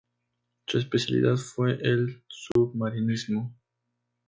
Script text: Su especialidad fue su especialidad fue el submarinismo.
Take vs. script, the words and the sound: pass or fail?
fail